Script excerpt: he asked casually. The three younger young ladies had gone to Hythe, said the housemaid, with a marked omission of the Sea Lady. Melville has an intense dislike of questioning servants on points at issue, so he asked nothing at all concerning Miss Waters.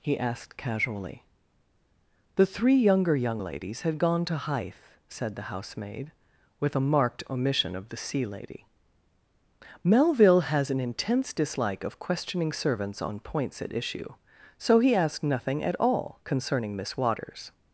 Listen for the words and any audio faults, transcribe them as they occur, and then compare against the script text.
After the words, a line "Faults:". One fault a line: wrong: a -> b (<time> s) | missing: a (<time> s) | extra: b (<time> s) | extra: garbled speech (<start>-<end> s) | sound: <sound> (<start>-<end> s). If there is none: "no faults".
he asked casually. The three younger young ladies had gone to Hythe, said the housemaid, with a marked omission of the Sea Lady. Melville has an intense dislike of questioning servants on points at issue, so he asked nothing at all concerning Miss Waters.
Faults:
no faults